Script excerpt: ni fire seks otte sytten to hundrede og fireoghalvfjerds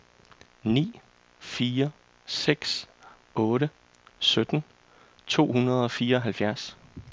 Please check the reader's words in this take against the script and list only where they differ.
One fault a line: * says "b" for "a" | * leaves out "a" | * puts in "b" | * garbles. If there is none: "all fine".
all fine